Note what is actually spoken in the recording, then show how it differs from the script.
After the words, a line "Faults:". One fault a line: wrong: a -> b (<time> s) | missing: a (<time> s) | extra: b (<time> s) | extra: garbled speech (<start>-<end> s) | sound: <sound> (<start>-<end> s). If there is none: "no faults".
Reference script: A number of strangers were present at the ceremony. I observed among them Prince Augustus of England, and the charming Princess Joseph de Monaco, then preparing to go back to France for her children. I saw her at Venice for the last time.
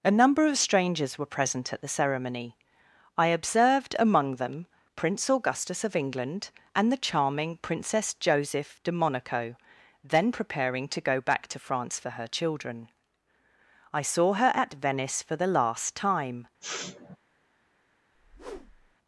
A number of strangers were present at the ceremony. I observed among them Prince Augustus of England, and the charming Princess Joseph de Monaco, then preparing to go back to France for her children. I saw her at Venice for the last time.
Faults:
sound: sniff (16.6-17.2 s)
sound: whoosh (18.1-19.0 s)